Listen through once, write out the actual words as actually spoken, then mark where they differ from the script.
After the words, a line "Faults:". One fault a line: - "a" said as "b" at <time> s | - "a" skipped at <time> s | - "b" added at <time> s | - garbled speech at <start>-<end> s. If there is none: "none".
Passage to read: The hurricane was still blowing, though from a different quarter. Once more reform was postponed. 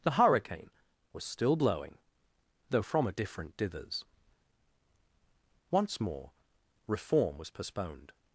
The hurricane was still blowing, though from a different dithers. Once more reform was postponed.
Faults:
- "quarter" said as "dithers" at 3.6 s